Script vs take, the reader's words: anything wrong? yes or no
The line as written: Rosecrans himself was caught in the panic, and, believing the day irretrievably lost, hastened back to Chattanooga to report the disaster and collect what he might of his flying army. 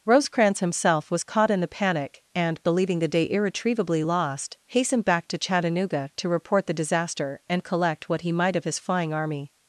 no